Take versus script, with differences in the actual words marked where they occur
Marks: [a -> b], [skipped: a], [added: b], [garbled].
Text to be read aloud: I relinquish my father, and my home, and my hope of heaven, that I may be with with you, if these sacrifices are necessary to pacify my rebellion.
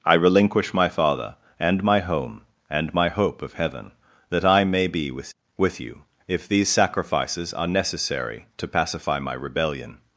I relinquish my father, and my home, and my hope of heaven, that I may be with with you, if these sacrifices are necessary to pacify my rebellion.